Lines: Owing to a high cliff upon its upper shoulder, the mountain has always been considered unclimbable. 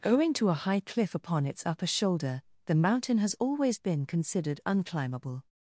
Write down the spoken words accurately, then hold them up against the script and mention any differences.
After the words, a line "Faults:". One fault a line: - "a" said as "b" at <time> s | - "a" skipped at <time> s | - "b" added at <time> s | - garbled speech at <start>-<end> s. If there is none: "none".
Owing to a high cliff upon its upper shoulder, the mountain has always been considered unclimbable.
Faults:
none